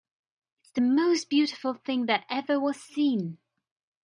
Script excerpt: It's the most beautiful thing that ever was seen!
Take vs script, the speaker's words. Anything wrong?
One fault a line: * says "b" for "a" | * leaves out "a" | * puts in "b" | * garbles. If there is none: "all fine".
all fine